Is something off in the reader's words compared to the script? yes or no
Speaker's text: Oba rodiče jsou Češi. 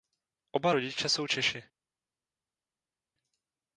no